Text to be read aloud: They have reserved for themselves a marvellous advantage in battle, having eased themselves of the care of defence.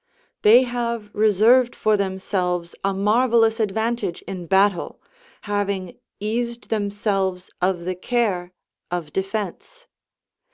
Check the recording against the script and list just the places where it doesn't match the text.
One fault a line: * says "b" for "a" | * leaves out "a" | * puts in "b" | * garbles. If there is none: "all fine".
all fine